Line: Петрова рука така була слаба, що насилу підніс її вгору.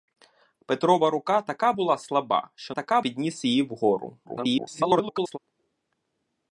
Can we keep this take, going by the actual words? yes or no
no